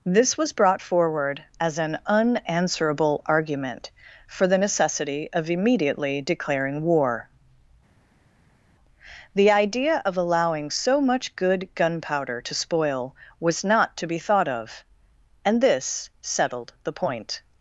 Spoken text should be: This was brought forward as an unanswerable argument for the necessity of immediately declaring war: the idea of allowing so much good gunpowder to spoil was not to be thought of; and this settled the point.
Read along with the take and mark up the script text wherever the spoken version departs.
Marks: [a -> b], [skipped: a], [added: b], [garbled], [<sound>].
This was brought forward as an unanswerable argument for the necessity of immediately declaring war: the idea of allowing so much good gunpowder to spoil was not to be thought of; and this settled the point.